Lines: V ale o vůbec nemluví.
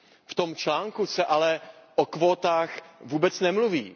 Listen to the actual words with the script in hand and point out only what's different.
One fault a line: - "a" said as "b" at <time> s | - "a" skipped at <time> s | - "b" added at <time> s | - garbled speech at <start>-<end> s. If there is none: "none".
- "tom článku se" added at 0.3 s
- "kvótách" added at 2.0 s